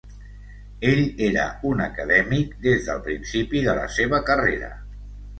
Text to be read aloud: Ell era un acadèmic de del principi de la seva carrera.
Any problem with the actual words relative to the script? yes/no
yes